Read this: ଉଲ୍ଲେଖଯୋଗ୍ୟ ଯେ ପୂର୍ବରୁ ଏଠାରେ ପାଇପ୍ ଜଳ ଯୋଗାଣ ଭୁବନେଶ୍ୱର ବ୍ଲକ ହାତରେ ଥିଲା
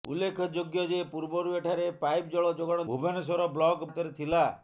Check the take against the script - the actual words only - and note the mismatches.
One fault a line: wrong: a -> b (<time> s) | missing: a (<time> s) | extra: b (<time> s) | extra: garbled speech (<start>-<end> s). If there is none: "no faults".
no faults